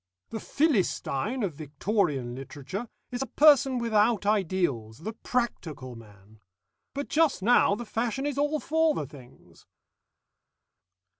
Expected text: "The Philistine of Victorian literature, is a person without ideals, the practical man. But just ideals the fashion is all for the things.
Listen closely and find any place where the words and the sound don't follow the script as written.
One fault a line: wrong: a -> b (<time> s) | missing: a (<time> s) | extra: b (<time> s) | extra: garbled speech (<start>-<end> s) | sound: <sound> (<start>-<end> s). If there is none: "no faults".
wrong: ideals -> now (7.4 s)